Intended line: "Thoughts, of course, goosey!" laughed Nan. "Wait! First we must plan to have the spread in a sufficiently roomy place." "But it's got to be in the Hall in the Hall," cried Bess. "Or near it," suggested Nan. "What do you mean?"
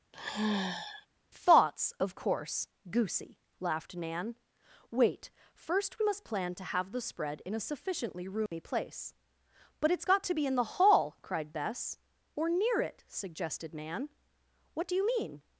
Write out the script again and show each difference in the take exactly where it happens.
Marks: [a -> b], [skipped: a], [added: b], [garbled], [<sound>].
[sigh] "Thoughts, of course, goosey!" laughed Nan. "Wait! First we must plan to have the spread in a sufficiently roomy [dropout] place." "But it's got to be in the Hall [skipped: in the Hall,"] cried Bess. "Or near it," suggested Nan. "What do you mean?"